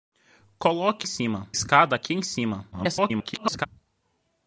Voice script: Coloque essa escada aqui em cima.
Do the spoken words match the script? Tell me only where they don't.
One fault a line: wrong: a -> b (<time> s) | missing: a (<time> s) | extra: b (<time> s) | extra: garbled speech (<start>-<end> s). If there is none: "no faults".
wrong: essa -> cima (1.0 s)
extra: garbled speech (2.7-3.7 s)